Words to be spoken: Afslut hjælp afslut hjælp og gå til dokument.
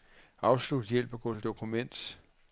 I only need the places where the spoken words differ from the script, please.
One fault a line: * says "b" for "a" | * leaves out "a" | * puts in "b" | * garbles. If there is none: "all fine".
* leaves out "afslut hjælp"